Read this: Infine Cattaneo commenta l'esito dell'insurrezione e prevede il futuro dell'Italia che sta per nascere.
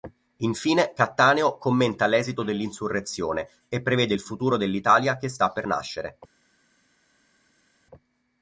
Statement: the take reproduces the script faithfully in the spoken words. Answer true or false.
true